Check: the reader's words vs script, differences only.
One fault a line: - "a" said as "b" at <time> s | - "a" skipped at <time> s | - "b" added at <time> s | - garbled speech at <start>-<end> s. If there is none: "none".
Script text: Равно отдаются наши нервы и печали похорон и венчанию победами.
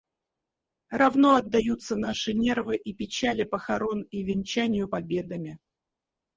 none